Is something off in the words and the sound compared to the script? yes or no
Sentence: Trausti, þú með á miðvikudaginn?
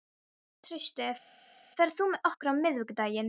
yes